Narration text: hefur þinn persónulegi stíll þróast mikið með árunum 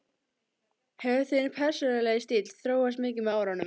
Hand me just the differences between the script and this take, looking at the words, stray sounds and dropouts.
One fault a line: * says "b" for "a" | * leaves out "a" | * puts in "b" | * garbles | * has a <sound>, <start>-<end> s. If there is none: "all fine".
all fine